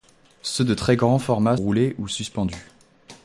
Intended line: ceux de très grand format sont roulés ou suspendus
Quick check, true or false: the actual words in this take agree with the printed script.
false